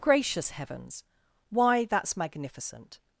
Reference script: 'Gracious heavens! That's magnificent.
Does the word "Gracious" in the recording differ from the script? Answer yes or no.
no